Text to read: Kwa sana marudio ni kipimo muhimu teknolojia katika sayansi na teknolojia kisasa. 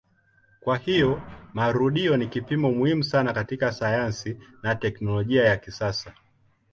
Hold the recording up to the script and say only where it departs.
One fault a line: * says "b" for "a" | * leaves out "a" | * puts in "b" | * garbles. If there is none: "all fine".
* says "hiyo" for "sana"
* says "sana" for "teknolojia"
* puts in "ya"